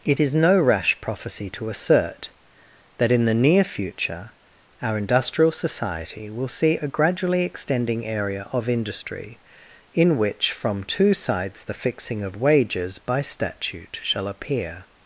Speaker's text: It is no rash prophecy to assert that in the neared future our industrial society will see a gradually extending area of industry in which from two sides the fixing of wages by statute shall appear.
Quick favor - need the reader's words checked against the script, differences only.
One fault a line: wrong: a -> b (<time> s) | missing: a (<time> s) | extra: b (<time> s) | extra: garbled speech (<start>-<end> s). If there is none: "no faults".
wrong: neared -> near (3.3 s)